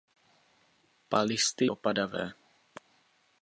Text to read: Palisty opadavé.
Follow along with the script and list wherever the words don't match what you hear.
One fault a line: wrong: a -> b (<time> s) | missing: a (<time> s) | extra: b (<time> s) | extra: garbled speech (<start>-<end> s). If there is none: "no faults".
no faults